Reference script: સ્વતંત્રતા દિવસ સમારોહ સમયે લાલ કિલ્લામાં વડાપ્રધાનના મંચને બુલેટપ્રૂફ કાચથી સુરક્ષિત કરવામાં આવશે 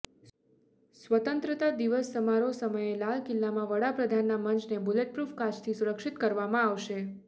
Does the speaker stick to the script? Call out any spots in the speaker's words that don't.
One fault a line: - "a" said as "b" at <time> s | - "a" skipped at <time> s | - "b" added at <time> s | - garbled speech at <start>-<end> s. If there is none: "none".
none